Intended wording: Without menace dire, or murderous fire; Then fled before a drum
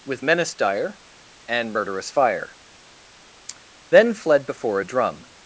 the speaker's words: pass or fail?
fail